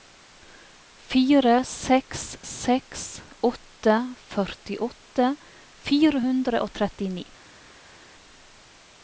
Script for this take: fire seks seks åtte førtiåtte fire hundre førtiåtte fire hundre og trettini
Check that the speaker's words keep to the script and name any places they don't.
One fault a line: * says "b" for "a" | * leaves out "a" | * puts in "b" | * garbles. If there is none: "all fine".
* leaves out "førtiåtte fire hundre"